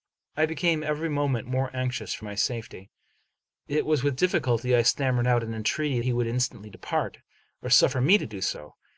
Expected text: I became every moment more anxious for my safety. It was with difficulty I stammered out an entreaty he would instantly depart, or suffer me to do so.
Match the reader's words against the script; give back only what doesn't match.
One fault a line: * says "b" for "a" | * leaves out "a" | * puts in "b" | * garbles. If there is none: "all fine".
all fine